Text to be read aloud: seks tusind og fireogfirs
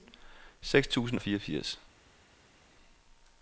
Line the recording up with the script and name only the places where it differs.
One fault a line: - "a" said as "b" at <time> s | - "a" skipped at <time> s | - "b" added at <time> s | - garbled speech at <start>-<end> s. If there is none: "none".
none